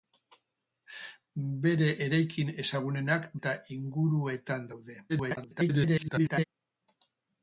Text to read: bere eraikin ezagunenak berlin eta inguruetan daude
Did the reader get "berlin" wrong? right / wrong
wrong